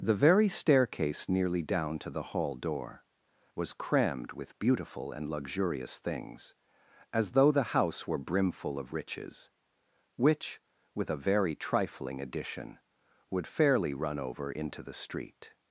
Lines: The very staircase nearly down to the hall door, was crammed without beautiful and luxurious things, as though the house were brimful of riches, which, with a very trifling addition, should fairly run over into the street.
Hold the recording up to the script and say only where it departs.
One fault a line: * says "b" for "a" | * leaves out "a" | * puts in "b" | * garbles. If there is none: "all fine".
* says "with" for "without"
* says "would" for "should"